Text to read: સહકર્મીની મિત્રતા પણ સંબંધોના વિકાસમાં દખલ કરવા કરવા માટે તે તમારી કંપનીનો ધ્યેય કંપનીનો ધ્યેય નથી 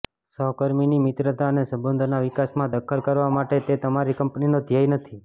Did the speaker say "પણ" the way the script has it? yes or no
no